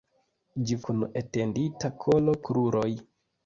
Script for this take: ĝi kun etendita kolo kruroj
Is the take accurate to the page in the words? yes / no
yes